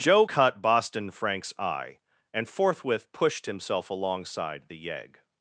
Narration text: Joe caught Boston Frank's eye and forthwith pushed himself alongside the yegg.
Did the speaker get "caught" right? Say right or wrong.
wrong